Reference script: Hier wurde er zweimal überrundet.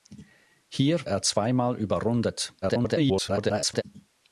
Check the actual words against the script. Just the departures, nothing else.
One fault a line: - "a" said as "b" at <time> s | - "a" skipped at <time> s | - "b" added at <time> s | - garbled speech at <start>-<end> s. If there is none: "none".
- "wurde" skipped at 1.0 s
- garbled speech at 2.6-3.8 s